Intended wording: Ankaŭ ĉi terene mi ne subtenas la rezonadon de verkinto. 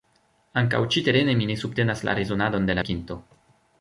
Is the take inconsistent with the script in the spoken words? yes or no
no